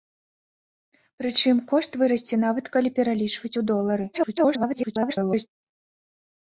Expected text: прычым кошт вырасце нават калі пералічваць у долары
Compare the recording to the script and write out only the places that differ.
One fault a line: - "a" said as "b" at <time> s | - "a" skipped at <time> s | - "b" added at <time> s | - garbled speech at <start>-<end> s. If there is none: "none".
- garbled speech at 4.1-5.5 s